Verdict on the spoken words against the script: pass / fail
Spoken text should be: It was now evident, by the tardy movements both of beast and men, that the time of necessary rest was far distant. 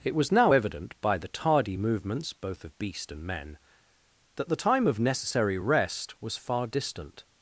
pass